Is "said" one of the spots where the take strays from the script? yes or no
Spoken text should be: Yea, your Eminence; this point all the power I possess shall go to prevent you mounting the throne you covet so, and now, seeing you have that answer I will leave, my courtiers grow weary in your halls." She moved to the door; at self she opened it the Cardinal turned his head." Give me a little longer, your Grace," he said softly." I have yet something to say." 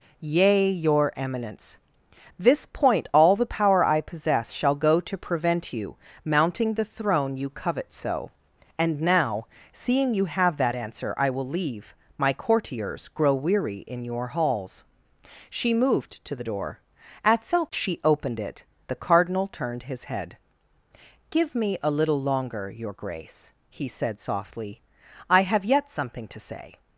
no